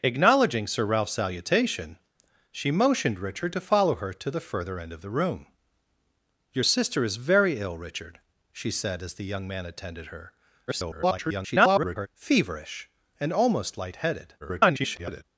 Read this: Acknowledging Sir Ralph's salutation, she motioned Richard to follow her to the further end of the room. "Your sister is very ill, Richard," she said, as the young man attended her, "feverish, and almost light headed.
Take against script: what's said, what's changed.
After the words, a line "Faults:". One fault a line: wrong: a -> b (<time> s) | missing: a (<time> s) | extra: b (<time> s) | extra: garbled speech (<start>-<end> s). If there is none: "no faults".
Acknowledging Sir Ralph's salutation, she motioned Richard to follow her to the further end of the room. "Your sister is very ill, Richard," she said, as the young man attended her, [garbled] "feverish, and almost light headed. [garbled]
Faults:
extra: garbled speech (10.7-12.1 s)
extra: garbled speech (14.4-15.2 s)